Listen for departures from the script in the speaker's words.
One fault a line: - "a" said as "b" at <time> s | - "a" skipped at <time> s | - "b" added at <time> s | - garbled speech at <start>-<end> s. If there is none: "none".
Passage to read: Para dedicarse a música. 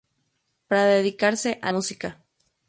none